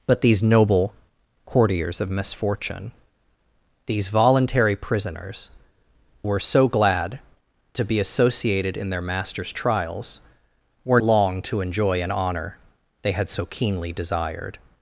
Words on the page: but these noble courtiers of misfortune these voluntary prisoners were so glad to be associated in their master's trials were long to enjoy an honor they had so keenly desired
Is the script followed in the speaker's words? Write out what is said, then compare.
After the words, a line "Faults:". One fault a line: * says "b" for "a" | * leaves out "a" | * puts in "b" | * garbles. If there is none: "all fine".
but these noble courtiers of misfortune these voluntary prisoners were so glad to be associated in their master's trials were long to enjoy an honor they had so keenly desired
Faults:
all fine